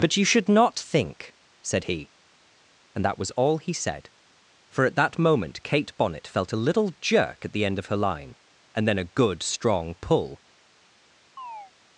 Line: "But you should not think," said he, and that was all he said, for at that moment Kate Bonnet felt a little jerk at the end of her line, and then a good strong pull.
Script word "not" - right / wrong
right